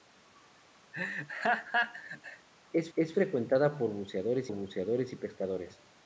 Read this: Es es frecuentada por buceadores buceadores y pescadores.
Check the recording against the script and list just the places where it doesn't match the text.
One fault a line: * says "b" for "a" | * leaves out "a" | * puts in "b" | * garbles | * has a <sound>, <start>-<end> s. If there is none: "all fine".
* has a laugh, 0.9-2.5 s